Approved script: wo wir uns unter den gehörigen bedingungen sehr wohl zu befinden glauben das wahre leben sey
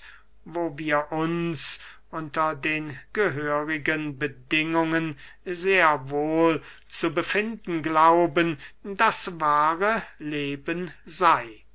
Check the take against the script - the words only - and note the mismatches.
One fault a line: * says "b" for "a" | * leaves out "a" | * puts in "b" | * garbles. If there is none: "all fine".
all fine